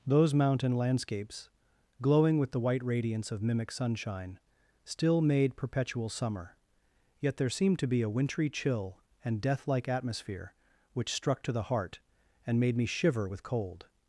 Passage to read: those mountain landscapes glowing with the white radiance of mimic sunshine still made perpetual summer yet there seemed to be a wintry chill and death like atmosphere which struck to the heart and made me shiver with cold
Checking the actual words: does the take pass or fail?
pass